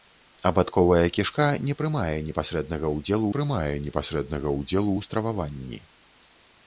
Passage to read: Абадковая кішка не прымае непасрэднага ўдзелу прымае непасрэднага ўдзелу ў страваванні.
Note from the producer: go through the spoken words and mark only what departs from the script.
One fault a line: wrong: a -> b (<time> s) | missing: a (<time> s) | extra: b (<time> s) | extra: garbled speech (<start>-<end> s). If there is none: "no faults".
no faults